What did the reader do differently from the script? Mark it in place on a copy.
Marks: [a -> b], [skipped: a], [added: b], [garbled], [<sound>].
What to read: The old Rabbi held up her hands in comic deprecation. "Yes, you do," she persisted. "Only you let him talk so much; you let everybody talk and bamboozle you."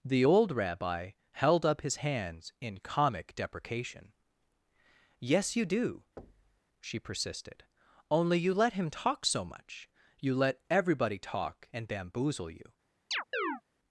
The old Rabbi held up [her -> his] hands in comic deprecation. "Yes, you do," [thud] she persisted. "Only you let him talk so much; you let everybody talk and bamboozle you." [chirp]